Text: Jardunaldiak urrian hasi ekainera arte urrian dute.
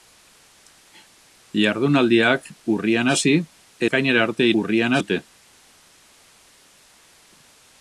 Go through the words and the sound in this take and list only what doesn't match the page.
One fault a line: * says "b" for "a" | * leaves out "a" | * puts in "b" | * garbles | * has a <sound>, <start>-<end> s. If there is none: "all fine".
all fine